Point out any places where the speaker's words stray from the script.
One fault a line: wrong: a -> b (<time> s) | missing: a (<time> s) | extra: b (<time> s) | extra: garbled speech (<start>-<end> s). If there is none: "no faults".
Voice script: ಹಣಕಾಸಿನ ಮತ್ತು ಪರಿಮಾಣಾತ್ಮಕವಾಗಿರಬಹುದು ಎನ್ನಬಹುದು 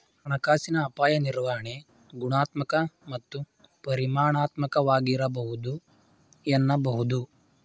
extra: ಅಪಾಯ ನಿರ್ವಹಣೆ ಗುಣಾತ್ಮಕ (0.8 s)